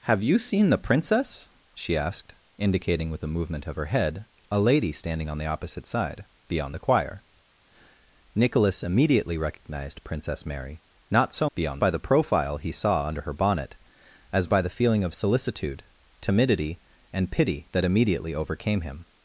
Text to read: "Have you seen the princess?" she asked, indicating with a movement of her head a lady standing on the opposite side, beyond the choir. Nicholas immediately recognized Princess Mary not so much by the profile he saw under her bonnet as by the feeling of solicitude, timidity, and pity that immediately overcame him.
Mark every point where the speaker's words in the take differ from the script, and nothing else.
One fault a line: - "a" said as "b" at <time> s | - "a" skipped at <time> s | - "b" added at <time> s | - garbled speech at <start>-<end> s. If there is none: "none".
- "much" said as "beyond" at 11.5 s